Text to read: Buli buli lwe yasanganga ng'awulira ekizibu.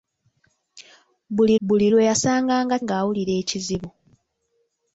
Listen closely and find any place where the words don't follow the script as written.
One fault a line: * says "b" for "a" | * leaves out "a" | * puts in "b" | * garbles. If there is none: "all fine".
all fine